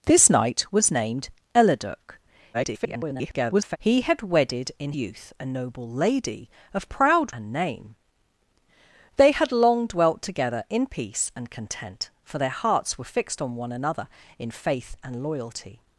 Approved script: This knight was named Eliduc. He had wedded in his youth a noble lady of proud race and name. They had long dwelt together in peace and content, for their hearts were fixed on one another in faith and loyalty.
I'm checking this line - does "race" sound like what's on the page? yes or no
no